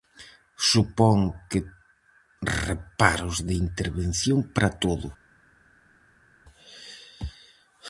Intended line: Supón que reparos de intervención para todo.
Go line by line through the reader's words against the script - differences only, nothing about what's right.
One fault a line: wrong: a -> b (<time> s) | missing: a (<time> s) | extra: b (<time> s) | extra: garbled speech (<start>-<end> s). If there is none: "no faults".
no faults